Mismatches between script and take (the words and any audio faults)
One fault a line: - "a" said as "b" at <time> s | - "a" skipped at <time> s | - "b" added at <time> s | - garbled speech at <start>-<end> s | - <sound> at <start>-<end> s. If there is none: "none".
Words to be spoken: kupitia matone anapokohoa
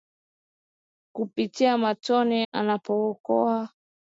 none